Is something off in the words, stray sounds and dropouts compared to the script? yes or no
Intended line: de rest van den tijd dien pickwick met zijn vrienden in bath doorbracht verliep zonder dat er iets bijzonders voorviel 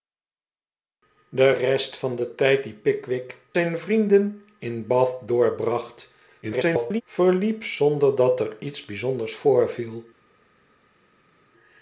yes